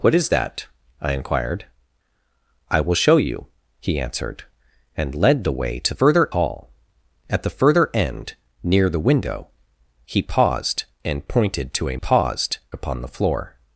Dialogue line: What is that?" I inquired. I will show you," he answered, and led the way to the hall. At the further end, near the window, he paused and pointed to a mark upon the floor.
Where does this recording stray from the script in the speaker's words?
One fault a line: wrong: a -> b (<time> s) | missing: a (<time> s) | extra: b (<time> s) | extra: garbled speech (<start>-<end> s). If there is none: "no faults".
wrong: the -> further (6.0 s)
wrong: mark -> paused (11.9 s)